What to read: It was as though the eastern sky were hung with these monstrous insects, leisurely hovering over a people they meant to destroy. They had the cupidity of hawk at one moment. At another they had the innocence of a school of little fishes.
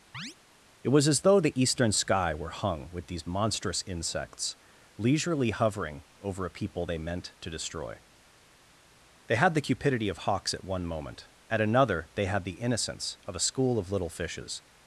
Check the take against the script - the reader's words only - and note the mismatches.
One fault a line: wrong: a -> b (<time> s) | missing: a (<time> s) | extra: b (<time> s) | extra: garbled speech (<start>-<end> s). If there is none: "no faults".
wrong: hawk -> hawks (10.2 s)